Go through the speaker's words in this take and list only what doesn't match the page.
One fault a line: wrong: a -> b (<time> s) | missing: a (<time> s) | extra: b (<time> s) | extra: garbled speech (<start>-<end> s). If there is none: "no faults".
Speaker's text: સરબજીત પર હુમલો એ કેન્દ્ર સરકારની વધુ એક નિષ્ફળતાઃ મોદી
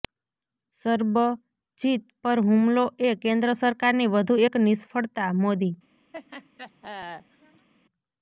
no faults